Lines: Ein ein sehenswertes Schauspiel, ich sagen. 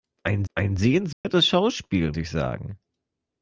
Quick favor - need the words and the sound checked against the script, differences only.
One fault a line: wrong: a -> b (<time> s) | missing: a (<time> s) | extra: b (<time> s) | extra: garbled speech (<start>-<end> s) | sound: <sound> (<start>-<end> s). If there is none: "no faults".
sound: dropout (1.1-1.2 s)